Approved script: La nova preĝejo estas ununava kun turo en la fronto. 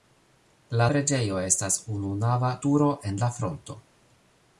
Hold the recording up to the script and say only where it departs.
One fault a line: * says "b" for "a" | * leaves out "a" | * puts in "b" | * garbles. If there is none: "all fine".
* leaves out "nova"
* leaves out "kun"